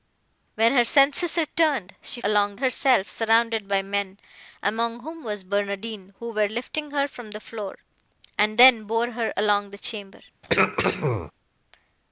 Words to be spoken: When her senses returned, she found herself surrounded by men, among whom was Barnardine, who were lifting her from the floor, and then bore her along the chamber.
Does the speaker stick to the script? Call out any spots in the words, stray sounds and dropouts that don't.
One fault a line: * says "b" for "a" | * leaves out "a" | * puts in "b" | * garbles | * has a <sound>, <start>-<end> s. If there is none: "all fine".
* says "along" for "found"
* has a throat clearing, 10.4-11.3 s